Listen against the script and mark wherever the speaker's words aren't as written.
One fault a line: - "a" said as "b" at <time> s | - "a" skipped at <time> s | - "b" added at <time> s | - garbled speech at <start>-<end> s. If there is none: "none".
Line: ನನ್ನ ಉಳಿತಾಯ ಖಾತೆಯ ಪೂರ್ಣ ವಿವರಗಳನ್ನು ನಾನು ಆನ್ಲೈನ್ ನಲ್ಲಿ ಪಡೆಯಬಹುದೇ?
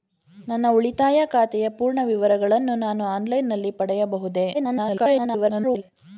- garbled speech at 4.5-5.8 s